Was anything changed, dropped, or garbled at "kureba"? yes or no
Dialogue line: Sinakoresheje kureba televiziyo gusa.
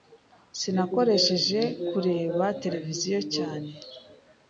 no